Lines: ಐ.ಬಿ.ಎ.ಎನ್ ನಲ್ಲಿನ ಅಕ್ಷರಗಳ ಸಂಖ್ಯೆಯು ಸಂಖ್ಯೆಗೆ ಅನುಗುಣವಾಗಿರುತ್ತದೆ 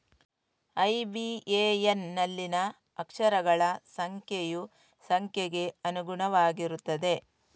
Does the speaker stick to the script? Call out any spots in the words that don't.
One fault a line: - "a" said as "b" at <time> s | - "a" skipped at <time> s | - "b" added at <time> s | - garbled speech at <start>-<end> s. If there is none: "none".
none